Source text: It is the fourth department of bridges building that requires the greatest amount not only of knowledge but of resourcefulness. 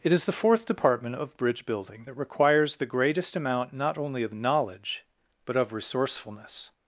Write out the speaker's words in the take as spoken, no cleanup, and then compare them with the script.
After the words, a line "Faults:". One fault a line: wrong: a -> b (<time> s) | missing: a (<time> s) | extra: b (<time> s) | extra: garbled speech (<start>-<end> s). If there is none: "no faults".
It is the fourth department of bridge building that requires the greatest amount not only of knowledge but of resourcefulness.
Faults:
wrong: bridges -> bridge (1.4 s)